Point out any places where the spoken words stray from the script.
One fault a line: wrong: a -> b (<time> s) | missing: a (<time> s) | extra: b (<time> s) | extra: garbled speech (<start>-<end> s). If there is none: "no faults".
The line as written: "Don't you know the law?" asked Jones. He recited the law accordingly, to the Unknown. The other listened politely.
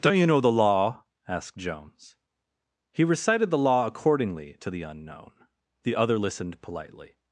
no faults